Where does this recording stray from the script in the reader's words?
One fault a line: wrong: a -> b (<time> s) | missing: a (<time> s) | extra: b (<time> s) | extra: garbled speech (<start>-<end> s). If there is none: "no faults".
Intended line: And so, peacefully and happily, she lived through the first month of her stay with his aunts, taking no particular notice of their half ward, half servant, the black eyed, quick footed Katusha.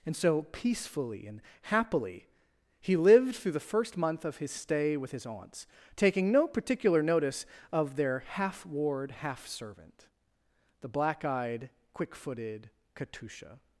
wrong: she -> he (2.8 s)
wrong: her -> his (4.4 s)